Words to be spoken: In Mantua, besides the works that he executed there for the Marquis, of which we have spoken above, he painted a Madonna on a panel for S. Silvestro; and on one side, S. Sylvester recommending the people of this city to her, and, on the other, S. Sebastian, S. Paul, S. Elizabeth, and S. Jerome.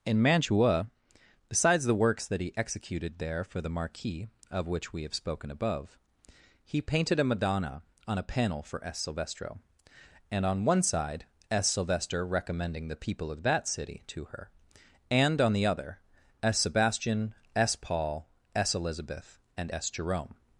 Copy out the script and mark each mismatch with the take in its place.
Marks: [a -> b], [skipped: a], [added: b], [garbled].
In Mantua, besides the works that he executed there for the Marquis, of which we have spoken above, he painted a Madonna on a panel for S. Silvestro; and on one side, S. Sylvester recommending the people of [this -> that] city to her, and, on the other, S. Sebastian, S. Paul, S. Elizabeth, and S. Jerome.